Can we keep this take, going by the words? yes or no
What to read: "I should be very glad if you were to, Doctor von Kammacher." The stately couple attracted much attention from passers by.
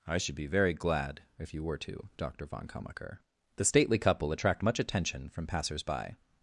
no